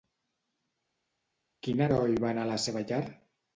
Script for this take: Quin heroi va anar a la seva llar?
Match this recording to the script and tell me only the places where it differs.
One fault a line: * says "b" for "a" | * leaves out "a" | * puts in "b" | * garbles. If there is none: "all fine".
all fine